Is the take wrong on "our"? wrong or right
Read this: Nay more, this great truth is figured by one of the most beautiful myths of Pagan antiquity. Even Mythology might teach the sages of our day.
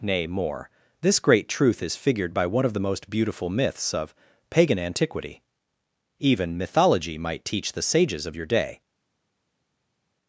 wrong